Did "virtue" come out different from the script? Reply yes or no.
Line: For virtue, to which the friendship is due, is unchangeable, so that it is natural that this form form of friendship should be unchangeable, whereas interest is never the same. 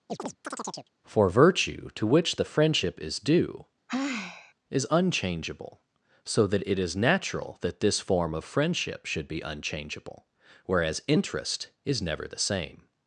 no